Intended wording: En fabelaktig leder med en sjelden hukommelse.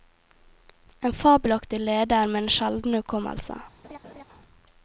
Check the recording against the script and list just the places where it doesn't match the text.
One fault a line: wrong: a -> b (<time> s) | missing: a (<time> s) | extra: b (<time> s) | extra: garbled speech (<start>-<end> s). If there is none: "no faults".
no faults